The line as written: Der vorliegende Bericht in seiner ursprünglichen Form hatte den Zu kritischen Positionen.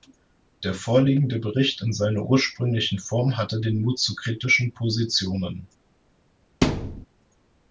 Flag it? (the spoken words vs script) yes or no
yes